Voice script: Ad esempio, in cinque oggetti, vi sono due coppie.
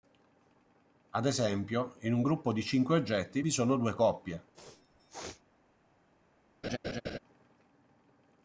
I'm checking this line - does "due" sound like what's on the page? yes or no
yes